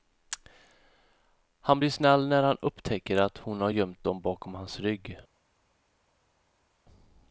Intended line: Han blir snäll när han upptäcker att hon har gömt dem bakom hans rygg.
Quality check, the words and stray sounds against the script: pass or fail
pass